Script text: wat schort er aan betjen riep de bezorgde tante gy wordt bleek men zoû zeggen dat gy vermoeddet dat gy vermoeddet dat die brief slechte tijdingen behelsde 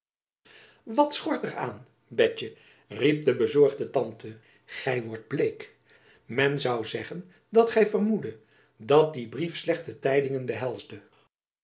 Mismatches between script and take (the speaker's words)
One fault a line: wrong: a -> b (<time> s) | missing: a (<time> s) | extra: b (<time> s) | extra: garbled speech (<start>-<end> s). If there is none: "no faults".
missing: gy vermoeddet dat (9.1 s)